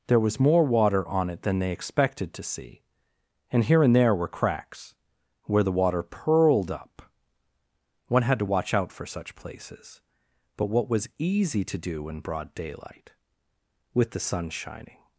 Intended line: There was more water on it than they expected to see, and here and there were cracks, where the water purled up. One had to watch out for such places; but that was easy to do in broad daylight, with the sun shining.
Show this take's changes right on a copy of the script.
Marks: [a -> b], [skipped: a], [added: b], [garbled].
There was more water on it than they expected to see, and here and there were cracks, where the water purled up. One had to watch out for such places; but [that -> what] was easy to do in broad daylight, with the sun shining.